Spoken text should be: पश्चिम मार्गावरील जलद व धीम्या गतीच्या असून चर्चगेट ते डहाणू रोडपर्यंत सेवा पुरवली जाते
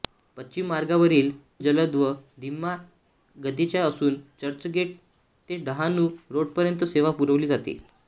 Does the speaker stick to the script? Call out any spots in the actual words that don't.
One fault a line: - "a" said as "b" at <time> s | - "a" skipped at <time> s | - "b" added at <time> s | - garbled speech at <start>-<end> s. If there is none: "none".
none